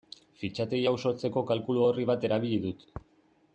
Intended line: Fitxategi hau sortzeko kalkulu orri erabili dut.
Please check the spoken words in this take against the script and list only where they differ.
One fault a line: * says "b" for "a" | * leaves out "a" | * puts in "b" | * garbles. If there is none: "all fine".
* puts in "bat"